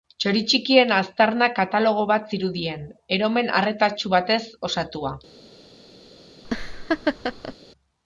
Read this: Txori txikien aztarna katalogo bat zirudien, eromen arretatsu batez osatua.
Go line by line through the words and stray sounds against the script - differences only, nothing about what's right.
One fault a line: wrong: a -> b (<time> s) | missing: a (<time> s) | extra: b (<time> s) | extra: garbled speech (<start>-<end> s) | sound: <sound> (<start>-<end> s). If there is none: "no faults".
sound: laugh (6.4-7.5 s)